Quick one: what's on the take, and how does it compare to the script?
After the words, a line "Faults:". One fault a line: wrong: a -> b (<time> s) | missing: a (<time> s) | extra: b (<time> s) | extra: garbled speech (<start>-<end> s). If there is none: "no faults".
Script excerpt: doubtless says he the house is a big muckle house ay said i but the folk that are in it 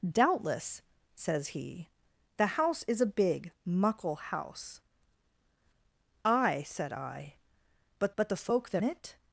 doubtless says he the house is a big muckle house ay said i but but the folk that it
Faults:
extra: but (8.2 s)
missing: are in (8.8 s)